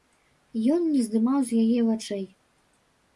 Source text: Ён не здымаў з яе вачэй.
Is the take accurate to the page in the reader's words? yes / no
yes